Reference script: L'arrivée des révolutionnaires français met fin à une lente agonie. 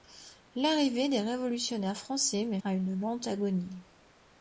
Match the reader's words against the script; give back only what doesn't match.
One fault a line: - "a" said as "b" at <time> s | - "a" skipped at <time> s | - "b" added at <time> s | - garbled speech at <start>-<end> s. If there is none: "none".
- "fin" skipped at 2.6 s